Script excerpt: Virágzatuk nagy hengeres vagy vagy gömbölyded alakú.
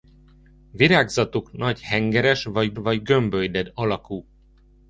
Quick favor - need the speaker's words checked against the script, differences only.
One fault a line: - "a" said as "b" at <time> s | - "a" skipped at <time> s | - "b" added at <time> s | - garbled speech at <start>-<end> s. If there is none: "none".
none